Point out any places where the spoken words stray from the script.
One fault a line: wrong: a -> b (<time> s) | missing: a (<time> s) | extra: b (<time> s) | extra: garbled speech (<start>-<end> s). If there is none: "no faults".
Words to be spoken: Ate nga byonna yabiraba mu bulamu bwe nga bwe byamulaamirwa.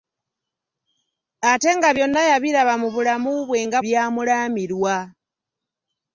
missing: bwe (3.8 s)